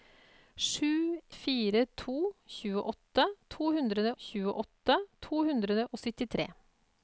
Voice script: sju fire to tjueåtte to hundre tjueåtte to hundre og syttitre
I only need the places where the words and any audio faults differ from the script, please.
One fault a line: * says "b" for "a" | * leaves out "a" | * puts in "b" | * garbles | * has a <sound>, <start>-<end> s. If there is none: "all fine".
all fine